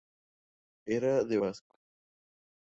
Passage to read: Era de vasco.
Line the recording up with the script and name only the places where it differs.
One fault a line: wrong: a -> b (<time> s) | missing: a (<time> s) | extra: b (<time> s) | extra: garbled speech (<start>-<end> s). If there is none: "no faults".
no faults